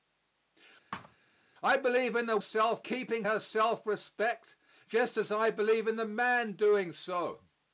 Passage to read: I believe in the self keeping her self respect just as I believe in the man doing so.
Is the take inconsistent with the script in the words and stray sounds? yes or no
yes